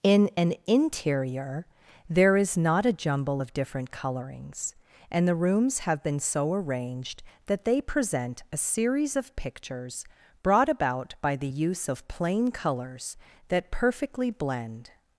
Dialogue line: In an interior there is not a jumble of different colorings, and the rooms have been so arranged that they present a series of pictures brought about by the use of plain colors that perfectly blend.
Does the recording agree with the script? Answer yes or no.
yes